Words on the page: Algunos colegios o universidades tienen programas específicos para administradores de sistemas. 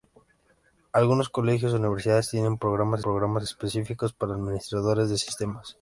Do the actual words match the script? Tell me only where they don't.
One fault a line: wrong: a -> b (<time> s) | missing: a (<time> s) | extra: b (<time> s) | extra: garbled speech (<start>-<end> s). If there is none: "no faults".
extra: programas (3.0 s)